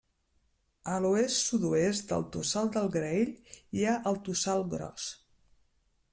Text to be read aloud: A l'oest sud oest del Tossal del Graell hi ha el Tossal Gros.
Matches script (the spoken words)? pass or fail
pass